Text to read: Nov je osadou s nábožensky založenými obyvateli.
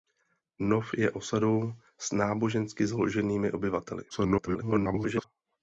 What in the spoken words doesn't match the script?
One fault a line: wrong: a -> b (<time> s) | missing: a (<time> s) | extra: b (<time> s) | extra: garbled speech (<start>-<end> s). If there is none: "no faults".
extra: garbled speech (4.1-5.2 s)